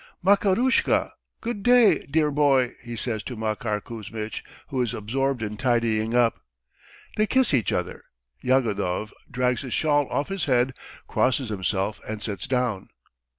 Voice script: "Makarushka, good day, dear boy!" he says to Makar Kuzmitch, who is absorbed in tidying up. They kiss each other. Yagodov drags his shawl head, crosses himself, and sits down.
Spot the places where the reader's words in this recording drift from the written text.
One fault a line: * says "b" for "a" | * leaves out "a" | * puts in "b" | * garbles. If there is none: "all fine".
* puts in "off his"